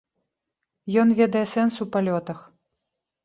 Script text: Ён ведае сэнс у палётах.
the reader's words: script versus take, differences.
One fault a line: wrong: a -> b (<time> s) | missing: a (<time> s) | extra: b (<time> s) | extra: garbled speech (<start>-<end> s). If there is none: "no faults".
no faults